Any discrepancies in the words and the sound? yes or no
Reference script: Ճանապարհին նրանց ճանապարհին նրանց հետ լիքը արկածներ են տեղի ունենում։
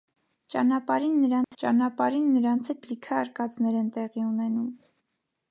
yes